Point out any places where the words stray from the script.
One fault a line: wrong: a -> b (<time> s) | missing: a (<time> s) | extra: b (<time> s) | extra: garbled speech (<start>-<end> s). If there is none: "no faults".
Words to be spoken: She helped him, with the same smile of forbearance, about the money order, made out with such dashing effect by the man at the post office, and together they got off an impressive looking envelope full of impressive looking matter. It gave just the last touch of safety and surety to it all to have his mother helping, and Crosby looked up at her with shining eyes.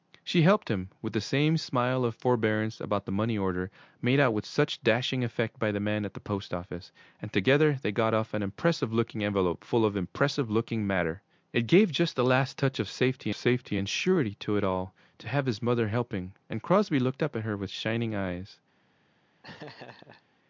extra: safety (13.3 s)